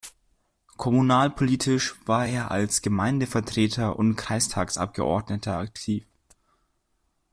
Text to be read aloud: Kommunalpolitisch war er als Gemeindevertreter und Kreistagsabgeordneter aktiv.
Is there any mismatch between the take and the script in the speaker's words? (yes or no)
no